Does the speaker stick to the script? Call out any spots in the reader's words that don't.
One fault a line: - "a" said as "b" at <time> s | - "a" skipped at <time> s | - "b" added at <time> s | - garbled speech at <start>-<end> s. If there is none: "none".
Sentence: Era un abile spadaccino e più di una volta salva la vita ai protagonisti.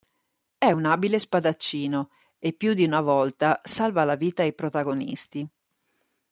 - "Era" said as "È" at 0.6 s